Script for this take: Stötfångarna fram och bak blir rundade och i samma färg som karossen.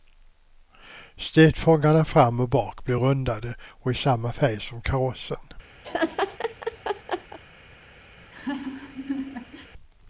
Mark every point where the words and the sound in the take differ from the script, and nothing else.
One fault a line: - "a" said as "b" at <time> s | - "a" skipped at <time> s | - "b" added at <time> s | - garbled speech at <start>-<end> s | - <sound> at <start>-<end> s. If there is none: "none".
- laugh at 5.8-7.4 s
- laugh at 8.2-9.7 s